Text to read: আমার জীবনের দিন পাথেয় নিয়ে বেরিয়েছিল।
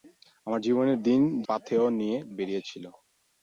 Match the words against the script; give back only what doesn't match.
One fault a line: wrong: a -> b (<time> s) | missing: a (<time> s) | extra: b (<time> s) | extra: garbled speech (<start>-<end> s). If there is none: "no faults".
no faults